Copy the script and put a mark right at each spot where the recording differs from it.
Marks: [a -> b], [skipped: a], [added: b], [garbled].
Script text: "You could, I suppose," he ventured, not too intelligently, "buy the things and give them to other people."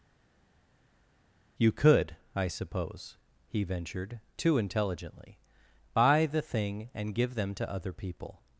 "You could, I suppose," he ventured, [skipped: not] too intelligently, "buy the [things -> thing] and give them to other people."